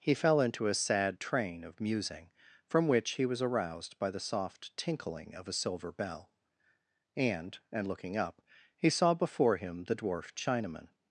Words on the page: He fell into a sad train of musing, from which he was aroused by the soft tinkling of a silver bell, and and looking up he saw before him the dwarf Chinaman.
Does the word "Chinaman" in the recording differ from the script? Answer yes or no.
no